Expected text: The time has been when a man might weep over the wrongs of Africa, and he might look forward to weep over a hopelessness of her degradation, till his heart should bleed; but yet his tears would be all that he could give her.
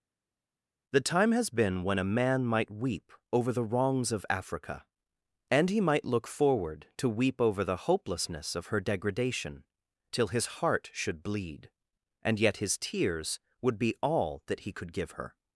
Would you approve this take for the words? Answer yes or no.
no